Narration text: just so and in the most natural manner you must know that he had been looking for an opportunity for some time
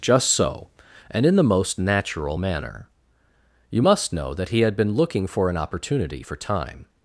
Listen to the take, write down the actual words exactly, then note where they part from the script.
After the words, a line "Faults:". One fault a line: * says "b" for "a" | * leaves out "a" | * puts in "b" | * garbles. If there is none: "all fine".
just so and in the most natural manner you must know that he had been looking for an opportunity for time
Faults:
* leaves out "some"